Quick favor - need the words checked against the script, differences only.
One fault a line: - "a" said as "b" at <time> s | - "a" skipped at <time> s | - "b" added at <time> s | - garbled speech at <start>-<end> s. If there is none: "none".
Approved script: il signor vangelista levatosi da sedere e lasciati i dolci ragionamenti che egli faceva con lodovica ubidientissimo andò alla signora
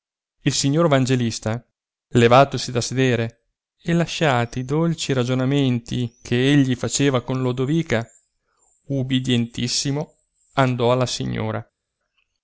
none